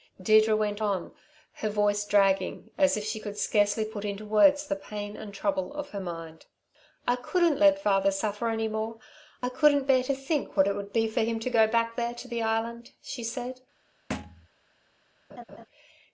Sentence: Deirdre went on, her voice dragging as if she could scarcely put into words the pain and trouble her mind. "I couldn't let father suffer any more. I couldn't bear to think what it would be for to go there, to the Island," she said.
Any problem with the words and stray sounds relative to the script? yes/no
yes